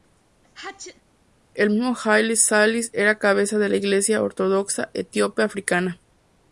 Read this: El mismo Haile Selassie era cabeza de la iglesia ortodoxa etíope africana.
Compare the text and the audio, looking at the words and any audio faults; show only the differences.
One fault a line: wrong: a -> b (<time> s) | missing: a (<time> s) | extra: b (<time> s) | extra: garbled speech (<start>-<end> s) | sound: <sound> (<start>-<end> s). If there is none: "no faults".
sound: sneeze (0.4-1.0 s)